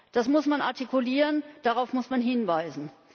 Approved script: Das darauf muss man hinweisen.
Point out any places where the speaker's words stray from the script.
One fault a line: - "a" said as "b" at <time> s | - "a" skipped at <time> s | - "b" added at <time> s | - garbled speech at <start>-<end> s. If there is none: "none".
- "muss man artikulieren" added at 0.3 s